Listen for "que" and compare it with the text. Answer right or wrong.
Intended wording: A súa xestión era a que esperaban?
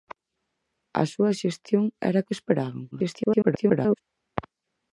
right